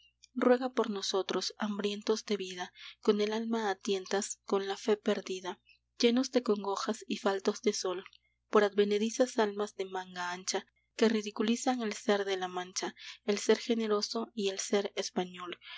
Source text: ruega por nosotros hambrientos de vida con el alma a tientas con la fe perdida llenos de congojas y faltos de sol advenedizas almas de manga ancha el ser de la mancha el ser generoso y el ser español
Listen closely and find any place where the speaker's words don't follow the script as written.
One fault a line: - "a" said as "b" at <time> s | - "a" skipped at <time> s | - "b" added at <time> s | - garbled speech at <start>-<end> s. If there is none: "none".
- "por" added at 8.5 s
- "que ridiculizan" added at 11.0 s